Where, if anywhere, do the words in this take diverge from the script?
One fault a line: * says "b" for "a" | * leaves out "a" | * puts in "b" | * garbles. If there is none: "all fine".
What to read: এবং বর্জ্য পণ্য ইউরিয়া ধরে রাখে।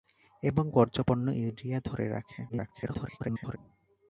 * garbles